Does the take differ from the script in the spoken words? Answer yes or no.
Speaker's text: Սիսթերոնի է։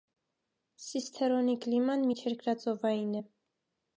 yes